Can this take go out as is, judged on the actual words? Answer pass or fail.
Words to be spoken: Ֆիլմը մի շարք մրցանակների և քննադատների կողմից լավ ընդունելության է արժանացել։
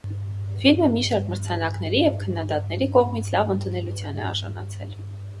pass